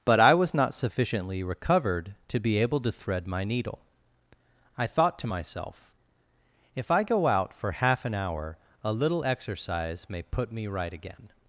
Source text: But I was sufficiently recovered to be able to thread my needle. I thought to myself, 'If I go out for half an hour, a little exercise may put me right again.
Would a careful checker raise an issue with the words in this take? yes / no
yes